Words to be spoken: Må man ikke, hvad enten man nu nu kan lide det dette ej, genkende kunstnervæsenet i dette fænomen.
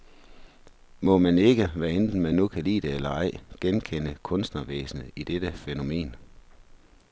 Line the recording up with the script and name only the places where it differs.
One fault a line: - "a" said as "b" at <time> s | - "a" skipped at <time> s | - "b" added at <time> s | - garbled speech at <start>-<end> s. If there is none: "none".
- "nu" skipped at 2.5 s
- "dette" said as "eller" at 2.9 s